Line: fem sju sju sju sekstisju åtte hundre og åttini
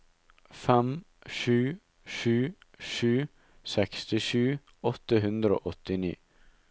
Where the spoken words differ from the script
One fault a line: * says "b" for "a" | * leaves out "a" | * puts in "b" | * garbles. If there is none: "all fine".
all fine